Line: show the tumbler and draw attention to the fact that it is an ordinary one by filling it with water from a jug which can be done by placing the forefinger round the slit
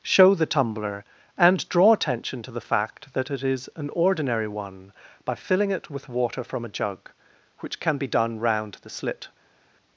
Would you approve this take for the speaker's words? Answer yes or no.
no